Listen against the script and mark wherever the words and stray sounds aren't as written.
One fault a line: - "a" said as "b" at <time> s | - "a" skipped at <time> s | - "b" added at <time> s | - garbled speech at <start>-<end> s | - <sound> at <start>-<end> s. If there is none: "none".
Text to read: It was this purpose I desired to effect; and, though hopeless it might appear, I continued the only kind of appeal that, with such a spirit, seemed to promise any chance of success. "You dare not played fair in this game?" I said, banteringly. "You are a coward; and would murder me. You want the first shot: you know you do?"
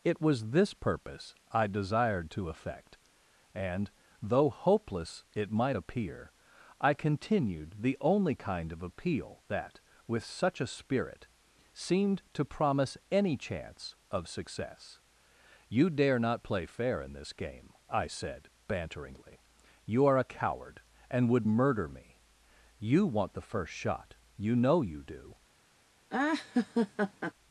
- "played" said as "play" at 16.4 s
- laugh at 26.1-27.3 s